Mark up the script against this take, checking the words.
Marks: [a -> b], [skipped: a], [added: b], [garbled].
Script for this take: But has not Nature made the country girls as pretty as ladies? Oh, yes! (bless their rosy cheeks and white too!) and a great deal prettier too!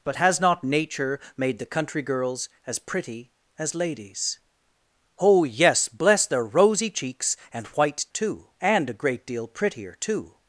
But has not Nature made the country girls as pretty as ladies? Oh, yes! (bless their rosy cheeks and white too!) and a great deal prettier too!